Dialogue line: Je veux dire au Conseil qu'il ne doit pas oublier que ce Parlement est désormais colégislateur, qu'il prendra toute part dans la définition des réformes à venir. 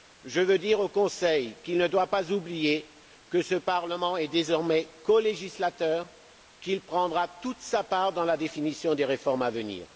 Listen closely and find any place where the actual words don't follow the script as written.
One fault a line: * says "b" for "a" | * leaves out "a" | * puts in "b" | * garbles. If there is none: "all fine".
* puts in "sa"